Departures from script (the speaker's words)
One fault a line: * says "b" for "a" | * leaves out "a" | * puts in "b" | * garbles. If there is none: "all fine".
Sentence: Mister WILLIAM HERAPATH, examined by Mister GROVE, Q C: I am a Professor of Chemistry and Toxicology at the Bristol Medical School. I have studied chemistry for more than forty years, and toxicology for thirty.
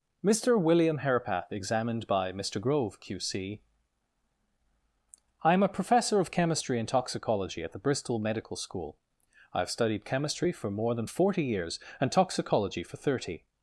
all fine